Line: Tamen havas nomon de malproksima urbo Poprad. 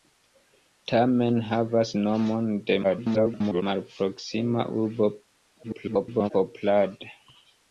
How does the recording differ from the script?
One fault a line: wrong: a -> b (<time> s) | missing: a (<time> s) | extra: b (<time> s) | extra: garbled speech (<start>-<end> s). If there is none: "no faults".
extra: garbled speech (2.8-3.6 s)
extra: garbled speech (5.6-6.3 s)